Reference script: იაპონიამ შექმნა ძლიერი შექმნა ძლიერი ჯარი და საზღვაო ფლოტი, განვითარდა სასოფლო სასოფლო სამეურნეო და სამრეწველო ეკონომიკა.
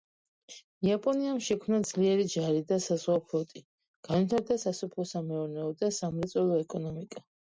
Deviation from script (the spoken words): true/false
true